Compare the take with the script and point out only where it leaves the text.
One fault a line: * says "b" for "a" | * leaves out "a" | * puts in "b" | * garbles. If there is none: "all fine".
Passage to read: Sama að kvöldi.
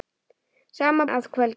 all fine